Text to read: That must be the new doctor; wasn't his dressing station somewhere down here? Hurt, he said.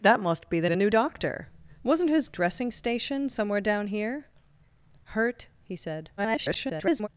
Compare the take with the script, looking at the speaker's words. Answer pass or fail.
fail